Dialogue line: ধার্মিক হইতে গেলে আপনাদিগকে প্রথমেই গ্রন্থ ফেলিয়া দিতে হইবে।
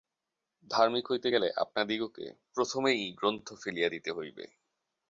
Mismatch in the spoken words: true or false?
false